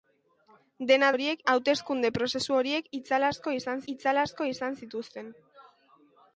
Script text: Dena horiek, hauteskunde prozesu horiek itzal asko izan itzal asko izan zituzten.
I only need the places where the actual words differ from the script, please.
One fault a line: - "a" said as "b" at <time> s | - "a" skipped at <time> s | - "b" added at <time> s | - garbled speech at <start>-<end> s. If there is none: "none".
none